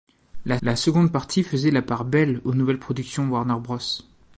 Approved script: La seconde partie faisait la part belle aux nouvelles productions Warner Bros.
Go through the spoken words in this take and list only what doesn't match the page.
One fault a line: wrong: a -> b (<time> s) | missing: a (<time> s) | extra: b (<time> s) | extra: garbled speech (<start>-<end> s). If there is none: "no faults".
extra: la (0.6 s)